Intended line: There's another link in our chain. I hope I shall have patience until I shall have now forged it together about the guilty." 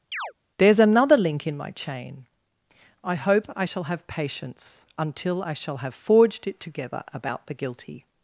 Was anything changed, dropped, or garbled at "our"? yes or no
yes